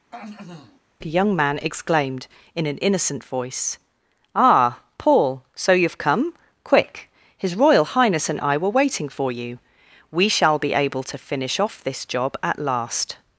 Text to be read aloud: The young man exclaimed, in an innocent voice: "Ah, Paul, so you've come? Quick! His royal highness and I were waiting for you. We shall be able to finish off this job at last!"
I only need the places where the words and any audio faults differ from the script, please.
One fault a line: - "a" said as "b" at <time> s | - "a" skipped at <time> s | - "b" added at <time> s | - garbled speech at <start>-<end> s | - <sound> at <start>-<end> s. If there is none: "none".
- throat clearing at 0.1-0.8 s